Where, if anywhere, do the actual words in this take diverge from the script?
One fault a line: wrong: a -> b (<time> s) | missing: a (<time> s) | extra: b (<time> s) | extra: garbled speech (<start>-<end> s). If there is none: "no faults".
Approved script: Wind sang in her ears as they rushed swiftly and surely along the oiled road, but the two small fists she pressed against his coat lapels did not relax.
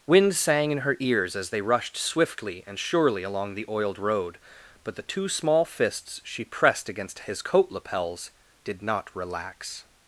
no faults